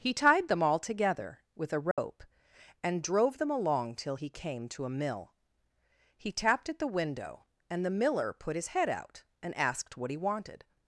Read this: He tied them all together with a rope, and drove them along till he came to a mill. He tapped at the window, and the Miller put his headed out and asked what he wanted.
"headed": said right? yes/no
no